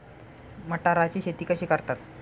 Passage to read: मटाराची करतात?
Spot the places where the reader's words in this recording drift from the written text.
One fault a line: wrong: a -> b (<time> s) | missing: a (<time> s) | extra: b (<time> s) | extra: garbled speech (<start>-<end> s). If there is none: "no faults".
extra: शेती कशी (1.2 s)